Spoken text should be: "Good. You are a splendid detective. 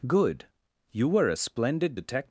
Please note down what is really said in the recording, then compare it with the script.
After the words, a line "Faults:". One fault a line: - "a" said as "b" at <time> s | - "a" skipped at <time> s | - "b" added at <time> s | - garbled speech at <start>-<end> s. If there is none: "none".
"Good. You were a splendid detective.
Faults:
- "are" said as "were" at 1.1 s